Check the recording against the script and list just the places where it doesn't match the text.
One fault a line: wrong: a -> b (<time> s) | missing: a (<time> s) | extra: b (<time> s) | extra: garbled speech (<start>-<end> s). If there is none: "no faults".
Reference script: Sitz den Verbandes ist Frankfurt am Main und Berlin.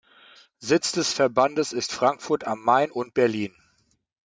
wrong: den -> des (0.9 s)